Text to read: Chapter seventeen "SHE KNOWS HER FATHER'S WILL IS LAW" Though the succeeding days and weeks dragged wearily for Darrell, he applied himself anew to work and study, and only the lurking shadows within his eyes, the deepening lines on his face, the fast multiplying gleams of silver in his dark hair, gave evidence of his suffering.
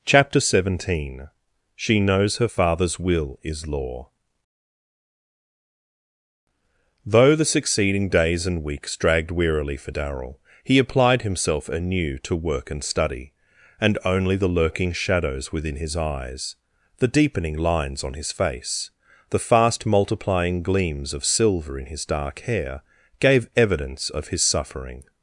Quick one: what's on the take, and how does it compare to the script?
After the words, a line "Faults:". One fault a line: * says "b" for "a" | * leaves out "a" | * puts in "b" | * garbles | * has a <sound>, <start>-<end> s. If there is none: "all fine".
Chapter seventeen "SHE KNOWS HER FATHER'S WILL IS LAW" Though the succeeding days and weeks dragged wearily for Darrell, he applied himself anew to work and study, and only the lurking shadows within his eyes, the deepening lines on his face, the fast multiplying gleams of silver in his dark hair, gave evidence of his suffering.
Faults:
all fine